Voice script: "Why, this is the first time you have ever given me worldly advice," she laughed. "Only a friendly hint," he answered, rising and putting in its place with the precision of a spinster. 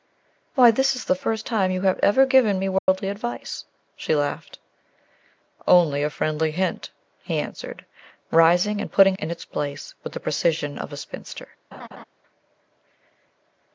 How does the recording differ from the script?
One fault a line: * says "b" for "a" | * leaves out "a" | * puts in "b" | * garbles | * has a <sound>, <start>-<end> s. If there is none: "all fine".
* has a dropout, 2.8-2.9 s
* has a laugh, 11.7-12.0 s